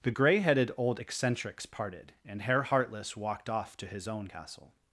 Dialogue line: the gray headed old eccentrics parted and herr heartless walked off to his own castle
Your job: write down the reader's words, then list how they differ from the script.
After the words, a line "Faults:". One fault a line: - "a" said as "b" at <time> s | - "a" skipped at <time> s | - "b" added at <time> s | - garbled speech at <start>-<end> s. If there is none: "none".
the gray headed old eccentrics parted and herr heartless walked off to his own castle
Faults:
none